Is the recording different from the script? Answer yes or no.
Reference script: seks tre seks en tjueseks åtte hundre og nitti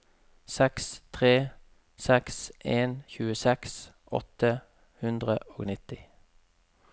no